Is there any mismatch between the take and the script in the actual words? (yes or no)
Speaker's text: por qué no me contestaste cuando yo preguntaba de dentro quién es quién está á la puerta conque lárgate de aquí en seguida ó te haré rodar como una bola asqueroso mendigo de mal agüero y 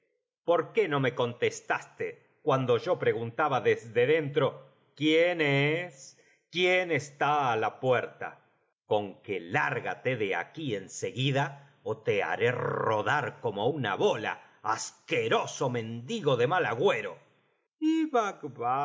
yes